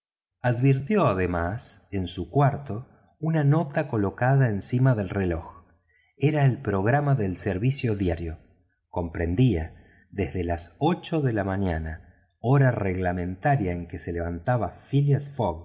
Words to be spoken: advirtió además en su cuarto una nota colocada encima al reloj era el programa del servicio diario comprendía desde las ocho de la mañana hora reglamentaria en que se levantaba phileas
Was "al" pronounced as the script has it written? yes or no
no